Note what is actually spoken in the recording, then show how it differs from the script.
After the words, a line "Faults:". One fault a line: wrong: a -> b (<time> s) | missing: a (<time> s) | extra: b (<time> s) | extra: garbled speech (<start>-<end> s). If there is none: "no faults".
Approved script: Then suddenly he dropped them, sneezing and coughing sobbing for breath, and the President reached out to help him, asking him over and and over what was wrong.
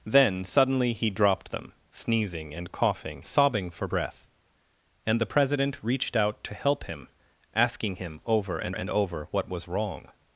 Then suddenly he dropped them, sneezing and coughing sobbing for breath, and the President reached out to help him, asking him over and and over what was wrong.
Faults:
no faults